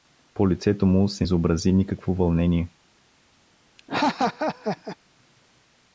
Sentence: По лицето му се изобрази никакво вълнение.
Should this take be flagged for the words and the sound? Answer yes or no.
yes